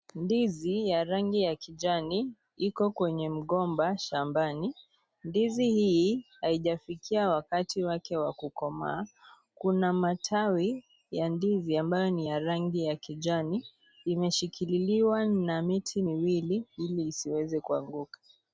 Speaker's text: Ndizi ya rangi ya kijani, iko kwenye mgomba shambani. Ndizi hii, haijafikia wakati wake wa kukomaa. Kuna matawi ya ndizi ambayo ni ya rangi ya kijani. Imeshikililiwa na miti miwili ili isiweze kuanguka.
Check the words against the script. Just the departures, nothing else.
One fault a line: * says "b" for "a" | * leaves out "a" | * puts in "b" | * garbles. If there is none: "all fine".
all fine